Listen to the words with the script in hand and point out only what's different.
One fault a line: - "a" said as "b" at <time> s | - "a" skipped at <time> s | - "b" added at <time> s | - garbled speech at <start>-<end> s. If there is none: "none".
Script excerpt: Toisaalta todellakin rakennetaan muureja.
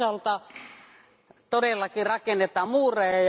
none